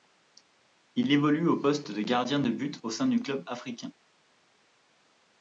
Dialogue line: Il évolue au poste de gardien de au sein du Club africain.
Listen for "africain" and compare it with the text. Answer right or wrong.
right